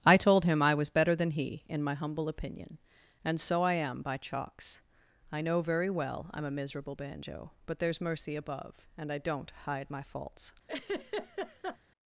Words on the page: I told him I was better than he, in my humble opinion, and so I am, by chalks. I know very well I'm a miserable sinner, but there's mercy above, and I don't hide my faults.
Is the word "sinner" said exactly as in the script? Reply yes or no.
no